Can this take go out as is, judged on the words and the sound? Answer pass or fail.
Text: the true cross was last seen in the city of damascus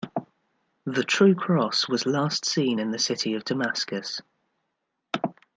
pass